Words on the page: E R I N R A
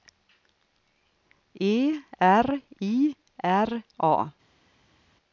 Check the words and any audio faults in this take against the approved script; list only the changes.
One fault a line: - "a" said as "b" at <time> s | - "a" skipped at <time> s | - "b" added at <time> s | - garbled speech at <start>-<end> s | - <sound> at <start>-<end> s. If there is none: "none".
- "N" skipped at 3.1 s